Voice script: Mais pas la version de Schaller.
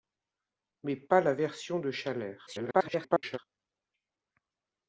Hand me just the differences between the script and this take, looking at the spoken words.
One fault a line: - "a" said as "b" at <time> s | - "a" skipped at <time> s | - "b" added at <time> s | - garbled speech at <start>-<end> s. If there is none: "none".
- garbled speech at 2.5-3.4 s